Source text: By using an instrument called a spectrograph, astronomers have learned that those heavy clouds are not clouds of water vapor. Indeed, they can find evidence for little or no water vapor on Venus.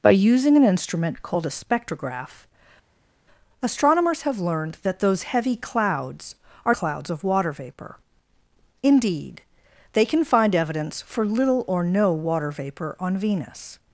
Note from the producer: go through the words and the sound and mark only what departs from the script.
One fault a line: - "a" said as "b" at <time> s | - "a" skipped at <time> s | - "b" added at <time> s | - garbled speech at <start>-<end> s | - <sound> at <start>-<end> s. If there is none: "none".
- "not" skipped at 6.7 s